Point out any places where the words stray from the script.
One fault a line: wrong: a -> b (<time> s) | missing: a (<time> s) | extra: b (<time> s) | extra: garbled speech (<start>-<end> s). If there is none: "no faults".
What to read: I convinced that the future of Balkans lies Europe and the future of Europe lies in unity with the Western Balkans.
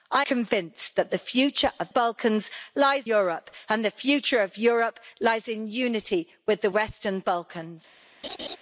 no faults